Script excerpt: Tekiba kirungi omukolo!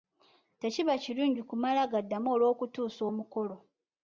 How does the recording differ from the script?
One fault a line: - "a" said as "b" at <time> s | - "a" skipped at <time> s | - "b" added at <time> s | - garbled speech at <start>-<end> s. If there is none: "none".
- "kumala gaddamu olw'okutuusa" added at 1.5 s